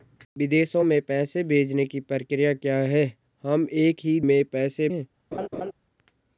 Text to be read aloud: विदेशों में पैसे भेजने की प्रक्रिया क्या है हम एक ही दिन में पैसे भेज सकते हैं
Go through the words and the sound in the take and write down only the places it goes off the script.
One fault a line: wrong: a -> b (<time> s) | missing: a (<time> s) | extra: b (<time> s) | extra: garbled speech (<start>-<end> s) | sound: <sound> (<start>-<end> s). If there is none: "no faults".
missing: दिन (4.2 s)
missing: भेज सकते (4.9 s)
sound: laugh (5.3-5.7 s)